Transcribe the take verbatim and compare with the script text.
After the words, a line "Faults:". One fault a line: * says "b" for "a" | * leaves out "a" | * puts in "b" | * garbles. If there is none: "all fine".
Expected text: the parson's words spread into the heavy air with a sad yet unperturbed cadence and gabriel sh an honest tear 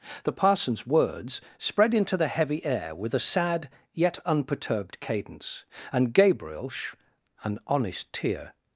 the parson's words spread into the heavy air with a sad yet unperturbed cadence and gabriel sh an honest tear
Faults:
all fine